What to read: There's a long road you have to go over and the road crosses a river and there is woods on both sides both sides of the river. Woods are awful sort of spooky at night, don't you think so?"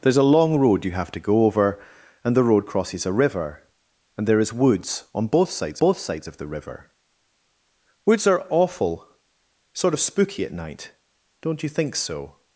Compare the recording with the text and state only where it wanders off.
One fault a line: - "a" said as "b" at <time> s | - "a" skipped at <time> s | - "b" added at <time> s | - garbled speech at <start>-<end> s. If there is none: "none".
none